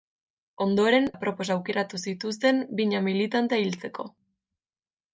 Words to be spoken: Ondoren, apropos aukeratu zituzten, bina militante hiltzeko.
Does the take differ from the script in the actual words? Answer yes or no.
no